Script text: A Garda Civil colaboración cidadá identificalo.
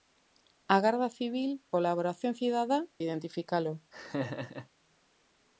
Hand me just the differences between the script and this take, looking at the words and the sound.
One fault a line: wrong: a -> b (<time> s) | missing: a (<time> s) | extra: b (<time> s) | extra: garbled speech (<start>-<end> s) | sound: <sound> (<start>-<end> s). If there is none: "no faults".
sound: laugh (3.9-4.7 s)